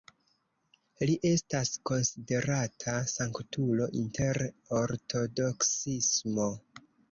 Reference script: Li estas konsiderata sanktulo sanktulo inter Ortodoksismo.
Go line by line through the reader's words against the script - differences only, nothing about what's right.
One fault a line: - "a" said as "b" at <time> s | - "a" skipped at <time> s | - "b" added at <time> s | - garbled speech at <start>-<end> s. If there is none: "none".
- "sanktulo" skipped at 3.9 s